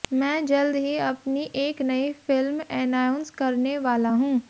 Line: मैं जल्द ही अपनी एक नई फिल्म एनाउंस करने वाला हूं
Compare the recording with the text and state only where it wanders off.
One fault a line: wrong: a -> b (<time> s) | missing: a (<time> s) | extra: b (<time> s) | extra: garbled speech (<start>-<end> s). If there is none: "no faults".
no faults